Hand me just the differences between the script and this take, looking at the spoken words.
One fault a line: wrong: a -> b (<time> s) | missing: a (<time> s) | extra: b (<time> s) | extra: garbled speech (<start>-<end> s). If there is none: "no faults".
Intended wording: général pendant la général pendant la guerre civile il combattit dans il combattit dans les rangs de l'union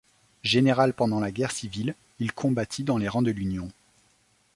missing: général pendant la (1.3 s)
missing: il combattit dans (3.0 s)